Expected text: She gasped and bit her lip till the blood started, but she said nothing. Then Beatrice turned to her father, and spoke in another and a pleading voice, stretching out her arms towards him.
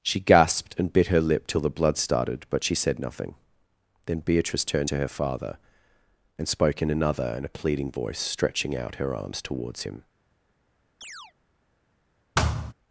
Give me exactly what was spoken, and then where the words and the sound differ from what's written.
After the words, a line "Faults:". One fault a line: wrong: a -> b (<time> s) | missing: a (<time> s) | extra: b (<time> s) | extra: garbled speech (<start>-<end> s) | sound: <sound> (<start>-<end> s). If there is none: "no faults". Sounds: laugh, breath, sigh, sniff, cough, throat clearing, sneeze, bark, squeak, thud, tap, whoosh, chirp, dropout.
She gasped and bit her lip till the blood started, but she said nothing. Then Beatrice turned to her father, and spoke in another and a pleading voice, stretching out her arms towards him.
Faults:
sound: chirp (11.0-11.3 s)
sound: thud (12.4-12.7 s)